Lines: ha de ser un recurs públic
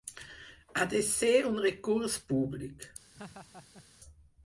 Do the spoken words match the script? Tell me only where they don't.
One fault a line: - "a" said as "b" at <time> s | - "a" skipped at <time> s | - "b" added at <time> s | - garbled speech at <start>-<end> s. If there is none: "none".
none